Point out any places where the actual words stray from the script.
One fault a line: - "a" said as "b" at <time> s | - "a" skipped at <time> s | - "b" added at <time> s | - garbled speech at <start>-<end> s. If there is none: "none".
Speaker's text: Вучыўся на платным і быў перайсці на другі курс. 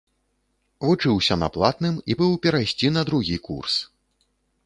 none